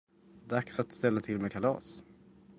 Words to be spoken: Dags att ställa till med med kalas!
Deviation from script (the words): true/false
true